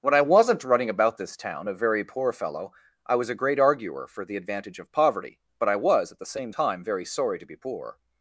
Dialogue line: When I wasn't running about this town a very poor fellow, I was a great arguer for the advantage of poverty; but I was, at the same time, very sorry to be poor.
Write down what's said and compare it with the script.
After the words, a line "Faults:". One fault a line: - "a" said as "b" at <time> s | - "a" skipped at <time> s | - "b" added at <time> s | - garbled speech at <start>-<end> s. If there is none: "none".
When I wasn't running about this town a very poor fellow, I was a great arguer for the advantage of poverty; but I was, at the same time, very sorry to be poor.
Faults:
none